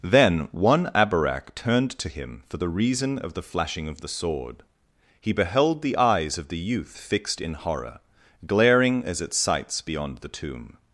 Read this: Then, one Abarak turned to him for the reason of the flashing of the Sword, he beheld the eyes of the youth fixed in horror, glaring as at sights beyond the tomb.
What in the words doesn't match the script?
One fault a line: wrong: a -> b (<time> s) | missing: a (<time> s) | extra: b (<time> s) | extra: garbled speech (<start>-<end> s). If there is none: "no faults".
no faults